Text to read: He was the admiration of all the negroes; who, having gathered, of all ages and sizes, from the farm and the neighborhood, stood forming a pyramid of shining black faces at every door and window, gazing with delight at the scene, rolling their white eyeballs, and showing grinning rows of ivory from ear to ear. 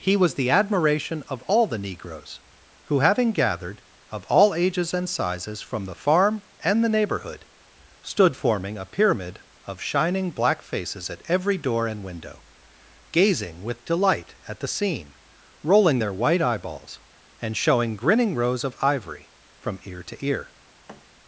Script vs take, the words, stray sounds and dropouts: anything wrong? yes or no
yes